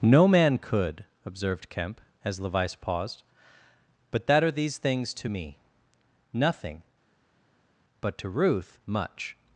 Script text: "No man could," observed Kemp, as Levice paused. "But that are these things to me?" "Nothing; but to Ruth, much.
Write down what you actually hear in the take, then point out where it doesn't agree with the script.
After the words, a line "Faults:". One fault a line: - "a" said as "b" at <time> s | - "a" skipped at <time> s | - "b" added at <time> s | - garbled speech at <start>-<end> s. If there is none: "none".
"No man could," observed Kemp, as Levice paused. "But that are these things to me?" "Nothing; but to Ruth, much.
Faults:
none